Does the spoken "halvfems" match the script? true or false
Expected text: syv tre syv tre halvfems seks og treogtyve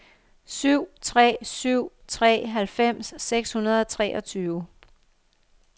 true